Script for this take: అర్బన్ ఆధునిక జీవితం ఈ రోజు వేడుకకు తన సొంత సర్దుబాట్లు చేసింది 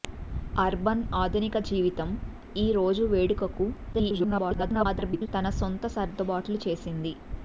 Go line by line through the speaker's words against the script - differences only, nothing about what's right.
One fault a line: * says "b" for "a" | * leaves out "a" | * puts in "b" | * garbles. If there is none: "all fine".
* garbles